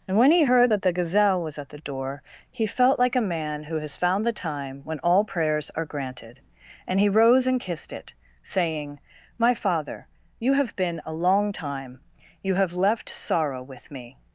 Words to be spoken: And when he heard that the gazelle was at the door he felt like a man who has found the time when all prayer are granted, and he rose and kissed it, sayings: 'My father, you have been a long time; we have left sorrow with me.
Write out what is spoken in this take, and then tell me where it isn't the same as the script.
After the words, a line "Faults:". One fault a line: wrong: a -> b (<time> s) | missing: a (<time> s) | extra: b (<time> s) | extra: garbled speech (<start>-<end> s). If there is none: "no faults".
And when he heard that the gazelle was at the door he felt like a man who has found the time when all prayers are granted, and he rose and kissed it, saying: 'My father, you have been a long time; you have left sorrow with me.
Faults:
wrong: prayer -> prayers (5.2 s)
wrong: sayings -> saying (8.4 s)
wrong: we -> you (12.4 s)